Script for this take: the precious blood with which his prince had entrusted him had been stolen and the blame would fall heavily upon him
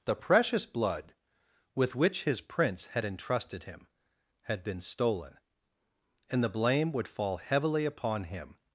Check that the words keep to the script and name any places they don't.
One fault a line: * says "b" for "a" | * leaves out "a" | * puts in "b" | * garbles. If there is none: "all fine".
all fine